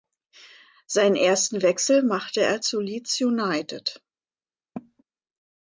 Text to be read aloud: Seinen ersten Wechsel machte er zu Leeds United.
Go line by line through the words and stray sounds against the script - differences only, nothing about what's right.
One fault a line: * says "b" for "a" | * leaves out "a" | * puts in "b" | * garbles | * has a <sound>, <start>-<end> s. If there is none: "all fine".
* has a cough, 4.8-5.0 s